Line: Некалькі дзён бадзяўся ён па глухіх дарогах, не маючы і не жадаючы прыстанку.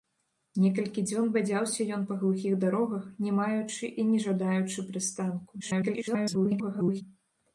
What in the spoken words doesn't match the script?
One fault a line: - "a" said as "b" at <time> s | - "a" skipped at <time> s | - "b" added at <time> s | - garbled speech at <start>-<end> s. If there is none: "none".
- garbled speech at 5.6-7.0 s